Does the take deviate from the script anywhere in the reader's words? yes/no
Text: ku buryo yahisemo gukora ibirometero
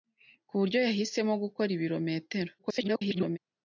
yes